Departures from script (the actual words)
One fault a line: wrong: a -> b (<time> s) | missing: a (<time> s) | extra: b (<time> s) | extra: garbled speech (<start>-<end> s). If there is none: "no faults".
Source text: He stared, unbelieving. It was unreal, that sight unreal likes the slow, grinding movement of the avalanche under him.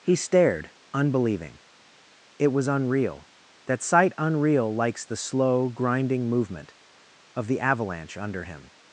no faults